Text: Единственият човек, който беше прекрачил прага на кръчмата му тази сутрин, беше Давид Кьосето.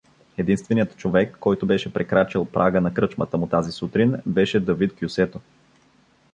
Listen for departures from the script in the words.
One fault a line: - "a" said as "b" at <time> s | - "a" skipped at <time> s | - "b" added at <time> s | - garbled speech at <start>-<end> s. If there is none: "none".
none